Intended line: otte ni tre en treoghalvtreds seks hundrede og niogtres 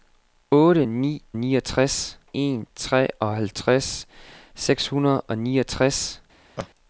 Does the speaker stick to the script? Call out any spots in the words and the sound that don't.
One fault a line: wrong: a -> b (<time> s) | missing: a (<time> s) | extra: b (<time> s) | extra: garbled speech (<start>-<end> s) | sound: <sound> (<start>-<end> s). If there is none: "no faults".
wrong: tre -> niogtres (1.4 s)
sound: laugh (6.6-6.7 s)